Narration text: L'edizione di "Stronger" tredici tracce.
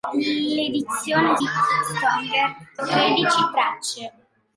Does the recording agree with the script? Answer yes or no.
yes